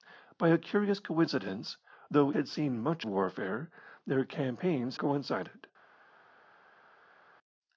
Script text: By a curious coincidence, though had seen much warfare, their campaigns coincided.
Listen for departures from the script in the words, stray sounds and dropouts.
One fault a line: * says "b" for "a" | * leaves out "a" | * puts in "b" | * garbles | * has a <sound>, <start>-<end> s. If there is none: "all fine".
all fine